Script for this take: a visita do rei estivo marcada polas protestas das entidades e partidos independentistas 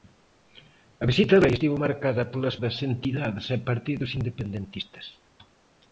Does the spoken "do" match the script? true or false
false